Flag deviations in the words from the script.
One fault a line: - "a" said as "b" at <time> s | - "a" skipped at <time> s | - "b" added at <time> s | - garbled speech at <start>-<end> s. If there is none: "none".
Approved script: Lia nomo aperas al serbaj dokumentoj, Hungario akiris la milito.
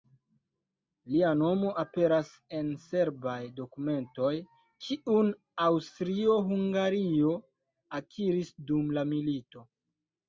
- "al" said as "en" at 2.6 s
- "kiun Aŭstrio" added at 4.9 s
- "dum" added at 8.7 s